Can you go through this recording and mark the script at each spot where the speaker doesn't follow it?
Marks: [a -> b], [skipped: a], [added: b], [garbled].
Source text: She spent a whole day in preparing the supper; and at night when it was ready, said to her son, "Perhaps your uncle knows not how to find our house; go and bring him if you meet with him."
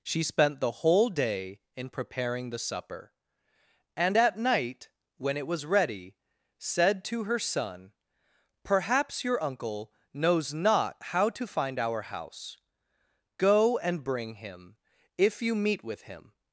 She spent [a -> the] whole day in preparing the supper; and at night when it was ready, said to her son, "Perhaps your uncle knows not how to find our house; go and bring him if you meet with him."